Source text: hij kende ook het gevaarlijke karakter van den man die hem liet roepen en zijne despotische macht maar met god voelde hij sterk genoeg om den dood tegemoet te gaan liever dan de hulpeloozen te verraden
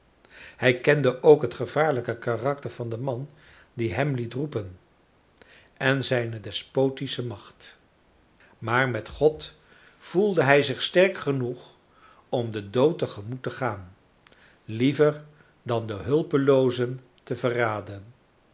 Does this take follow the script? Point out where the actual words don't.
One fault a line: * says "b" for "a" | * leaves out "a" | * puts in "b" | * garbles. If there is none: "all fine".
* puts in "zich"